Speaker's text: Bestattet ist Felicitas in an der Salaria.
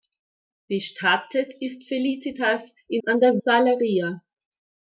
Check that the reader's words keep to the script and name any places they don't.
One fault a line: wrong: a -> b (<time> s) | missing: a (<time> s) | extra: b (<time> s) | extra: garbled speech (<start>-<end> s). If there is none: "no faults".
no faults